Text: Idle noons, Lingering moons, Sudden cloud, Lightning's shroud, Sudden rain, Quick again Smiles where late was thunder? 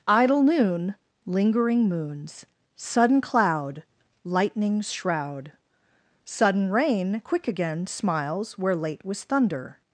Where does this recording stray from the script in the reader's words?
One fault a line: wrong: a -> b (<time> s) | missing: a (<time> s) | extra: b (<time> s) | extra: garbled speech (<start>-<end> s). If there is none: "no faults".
wrong: noons -> noon (0.4 s)